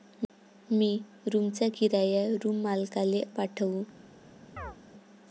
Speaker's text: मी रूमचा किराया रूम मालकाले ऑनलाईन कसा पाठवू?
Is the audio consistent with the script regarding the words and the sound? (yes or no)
no